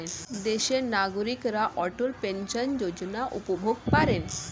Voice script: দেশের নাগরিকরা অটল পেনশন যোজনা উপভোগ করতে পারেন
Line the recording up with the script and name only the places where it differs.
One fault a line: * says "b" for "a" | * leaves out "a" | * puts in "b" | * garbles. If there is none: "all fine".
* leaves out "করতে"